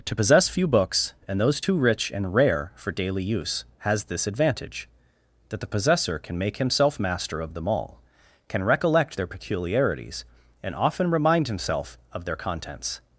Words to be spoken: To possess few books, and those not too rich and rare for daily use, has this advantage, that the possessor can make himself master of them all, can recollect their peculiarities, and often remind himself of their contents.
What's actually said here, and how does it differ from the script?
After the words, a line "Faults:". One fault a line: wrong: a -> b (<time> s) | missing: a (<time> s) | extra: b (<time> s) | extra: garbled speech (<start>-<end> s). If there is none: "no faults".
To possess few books, and those too rich and rare for daily use, has this advantage, that the possessor can make himself master of them all, can recollect their peculiarities, and often remind himself of their contents.
Faults:
missing: not (1.6 s)